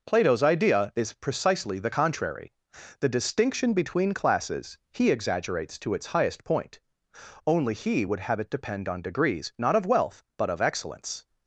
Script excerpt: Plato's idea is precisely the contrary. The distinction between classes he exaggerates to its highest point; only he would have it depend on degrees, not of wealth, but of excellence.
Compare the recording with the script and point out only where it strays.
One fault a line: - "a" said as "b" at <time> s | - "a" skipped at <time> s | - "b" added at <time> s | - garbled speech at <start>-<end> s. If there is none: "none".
none